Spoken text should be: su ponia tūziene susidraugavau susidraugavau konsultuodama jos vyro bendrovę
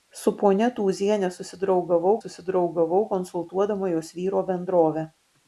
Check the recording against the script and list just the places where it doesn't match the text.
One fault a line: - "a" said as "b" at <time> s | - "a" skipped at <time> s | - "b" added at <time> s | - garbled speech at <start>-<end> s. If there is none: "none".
none